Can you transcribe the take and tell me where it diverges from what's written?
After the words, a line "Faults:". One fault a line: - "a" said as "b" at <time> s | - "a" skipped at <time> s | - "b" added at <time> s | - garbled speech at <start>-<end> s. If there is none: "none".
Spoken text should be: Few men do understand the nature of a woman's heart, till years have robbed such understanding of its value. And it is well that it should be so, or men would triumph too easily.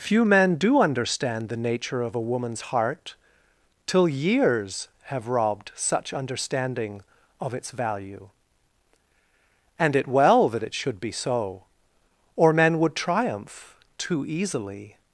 Few men do understand the nature of a woman's heart, till years have robbed such understanding of its value. And it well that it should be so, or men would triumph too easily.
Faults:
- "is" skipped at 10.1 s